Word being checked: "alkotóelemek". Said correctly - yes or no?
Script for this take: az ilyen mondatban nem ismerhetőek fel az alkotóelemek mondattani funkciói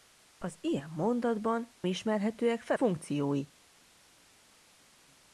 no